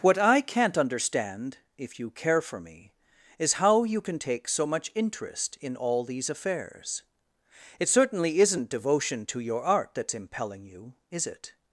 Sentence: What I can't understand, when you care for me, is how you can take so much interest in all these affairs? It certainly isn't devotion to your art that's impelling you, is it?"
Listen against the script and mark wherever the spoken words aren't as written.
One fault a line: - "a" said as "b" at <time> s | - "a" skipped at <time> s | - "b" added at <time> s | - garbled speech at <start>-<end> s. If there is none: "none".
- "when" said as "if" at 1.8 s